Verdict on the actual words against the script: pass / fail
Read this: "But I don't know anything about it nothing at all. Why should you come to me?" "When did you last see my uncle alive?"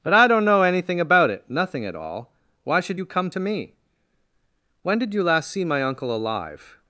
pass